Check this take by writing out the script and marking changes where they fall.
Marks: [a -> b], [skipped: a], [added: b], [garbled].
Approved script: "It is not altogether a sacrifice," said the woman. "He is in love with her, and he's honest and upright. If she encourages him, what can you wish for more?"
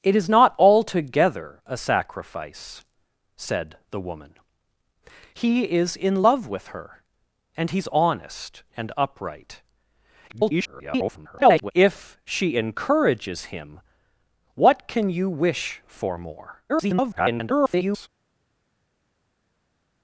"It is not altogether a sacrifice," said the woman. "He is in love with her, and he's honest and upright. [garbled] If she encourages him, what can you wish for more?" [garbled]